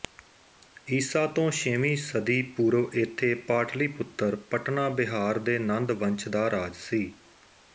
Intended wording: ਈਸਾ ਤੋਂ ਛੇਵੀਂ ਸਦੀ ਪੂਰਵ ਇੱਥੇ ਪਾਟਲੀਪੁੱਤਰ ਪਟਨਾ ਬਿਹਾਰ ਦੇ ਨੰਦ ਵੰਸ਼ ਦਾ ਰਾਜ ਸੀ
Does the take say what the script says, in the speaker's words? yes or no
yes